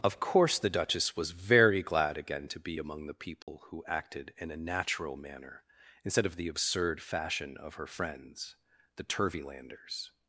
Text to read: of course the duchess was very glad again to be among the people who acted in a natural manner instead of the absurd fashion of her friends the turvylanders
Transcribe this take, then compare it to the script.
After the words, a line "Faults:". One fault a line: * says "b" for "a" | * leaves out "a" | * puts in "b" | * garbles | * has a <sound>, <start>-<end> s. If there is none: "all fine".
of course the duchess was very glad again to be among the people who acted in a natural manner instead of the absurd fashion of her friends the turvylanders
Faults:
* has a dropout, 3.4-3.5 s